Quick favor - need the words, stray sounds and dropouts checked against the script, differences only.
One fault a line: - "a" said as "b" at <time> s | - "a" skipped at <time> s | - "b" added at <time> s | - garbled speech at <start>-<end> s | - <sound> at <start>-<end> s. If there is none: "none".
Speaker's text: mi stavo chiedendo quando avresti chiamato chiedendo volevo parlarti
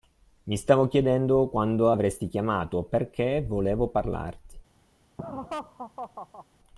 - "chiedendo" said as "perché" at 2.8 s
- laugh at 5.2-6.5 s